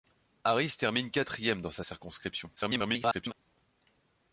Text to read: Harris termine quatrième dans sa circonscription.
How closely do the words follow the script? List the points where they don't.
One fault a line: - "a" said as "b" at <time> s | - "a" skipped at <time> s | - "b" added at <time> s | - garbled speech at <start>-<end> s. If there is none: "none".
- garbled speech at 2.6-3.3 s